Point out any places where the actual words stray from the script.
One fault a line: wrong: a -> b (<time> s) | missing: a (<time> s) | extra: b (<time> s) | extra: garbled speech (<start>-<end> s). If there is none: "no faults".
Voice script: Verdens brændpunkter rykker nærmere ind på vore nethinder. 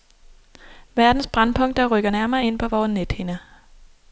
no faults